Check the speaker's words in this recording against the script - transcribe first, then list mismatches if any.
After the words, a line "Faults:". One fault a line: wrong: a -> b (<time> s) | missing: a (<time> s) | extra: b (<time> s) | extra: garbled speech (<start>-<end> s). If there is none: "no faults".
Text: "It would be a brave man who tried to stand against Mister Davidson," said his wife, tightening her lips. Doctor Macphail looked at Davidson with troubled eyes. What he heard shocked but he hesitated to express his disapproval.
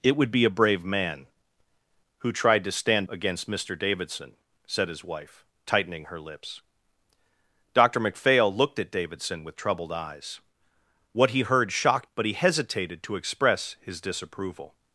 "It would be a brave man who tried to stand against Mister Davidson," said his wife, tightening her lips. Doctor Macphail looked at Davidson with troubled eyes. What he heard shocked but he hesitated to express his disapproval.
Faults:
no faults